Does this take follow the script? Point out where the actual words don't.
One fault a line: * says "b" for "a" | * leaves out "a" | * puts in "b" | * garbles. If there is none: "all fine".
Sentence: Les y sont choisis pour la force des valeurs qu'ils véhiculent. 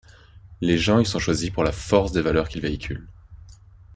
* puts in "gens"